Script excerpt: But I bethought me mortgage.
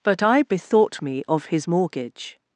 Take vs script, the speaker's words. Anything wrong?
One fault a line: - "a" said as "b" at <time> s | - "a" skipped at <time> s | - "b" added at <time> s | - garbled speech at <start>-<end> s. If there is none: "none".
- "of his" added at 1.3 s